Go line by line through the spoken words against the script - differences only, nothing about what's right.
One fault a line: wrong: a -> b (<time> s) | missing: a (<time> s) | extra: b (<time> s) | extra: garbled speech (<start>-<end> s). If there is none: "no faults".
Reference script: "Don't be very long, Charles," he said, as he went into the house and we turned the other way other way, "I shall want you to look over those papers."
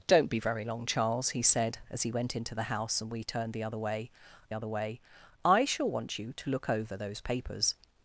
no faults